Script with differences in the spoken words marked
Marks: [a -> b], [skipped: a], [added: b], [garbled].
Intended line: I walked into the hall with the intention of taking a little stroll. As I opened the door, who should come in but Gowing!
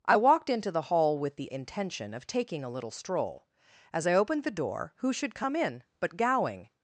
I walked into the hall with the intention of taking a little stroll. As I opened the door, who should come in but Gowing!